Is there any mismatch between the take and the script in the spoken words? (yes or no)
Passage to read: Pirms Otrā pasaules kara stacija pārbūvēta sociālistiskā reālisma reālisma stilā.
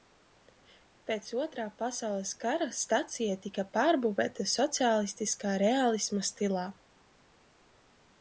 yes